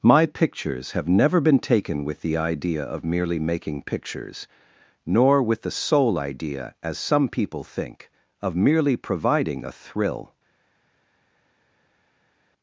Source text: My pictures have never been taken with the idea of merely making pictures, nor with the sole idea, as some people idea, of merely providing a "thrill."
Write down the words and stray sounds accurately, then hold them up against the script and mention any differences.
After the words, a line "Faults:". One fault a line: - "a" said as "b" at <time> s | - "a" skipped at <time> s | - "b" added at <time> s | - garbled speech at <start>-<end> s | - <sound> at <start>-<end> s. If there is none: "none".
My pictures have never been taken with the idea of merely making pictures, nor with the sole idea, as some people think, of merely providing a "thrill."
Faults:
- "idea" said as "think" at 7.6 s